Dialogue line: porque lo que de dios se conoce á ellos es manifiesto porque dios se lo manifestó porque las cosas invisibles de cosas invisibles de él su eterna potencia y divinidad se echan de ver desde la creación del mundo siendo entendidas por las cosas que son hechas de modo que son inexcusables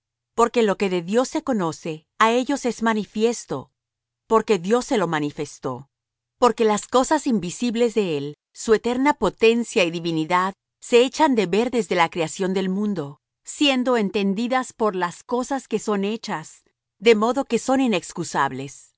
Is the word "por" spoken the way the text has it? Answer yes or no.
yes